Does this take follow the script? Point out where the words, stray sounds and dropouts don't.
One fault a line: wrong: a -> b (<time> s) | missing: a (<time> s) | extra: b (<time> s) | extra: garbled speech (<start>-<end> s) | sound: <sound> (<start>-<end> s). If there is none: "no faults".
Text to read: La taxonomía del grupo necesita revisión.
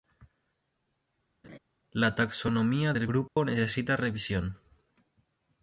sound: laugh (1.4-1.6 s)
sound: dropout (3.3-3.4 s)